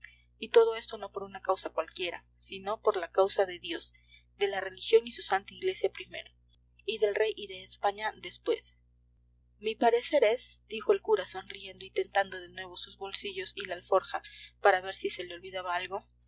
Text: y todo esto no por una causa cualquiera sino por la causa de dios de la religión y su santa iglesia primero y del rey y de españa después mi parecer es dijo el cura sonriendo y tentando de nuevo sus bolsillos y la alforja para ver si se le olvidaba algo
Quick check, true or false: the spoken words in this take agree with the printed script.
true